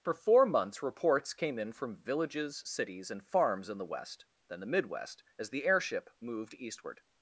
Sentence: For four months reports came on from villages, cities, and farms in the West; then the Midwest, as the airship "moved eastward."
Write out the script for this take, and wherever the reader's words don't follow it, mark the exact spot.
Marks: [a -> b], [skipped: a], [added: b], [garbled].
For four months reports came [on -> in] from villages, cities, and farms in the West; then the Midwest, as the airship "moved eastward."